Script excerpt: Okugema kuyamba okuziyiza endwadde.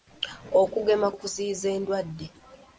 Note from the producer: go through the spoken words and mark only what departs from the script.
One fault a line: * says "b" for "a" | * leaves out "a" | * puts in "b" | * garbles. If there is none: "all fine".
* leaves out "kuyamba"